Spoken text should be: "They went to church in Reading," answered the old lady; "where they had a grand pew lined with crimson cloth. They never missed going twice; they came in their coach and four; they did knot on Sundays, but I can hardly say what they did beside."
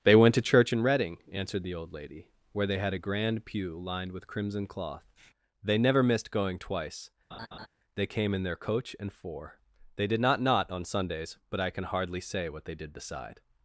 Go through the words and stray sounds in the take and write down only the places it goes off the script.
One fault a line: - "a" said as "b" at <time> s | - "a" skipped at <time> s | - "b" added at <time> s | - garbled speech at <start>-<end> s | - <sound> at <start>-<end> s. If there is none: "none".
- laugh at 7.3-7.7 s
- "not" added at 10.2 s